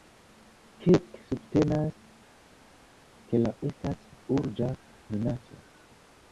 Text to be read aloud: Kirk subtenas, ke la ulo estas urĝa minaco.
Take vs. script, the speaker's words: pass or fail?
fail